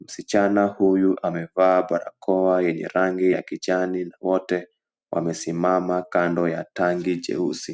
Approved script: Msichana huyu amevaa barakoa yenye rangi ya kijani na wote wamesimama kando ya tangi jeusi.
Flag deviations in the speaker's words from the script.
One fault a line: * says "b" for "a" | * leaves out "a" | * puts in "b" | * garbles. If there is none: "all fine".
all fine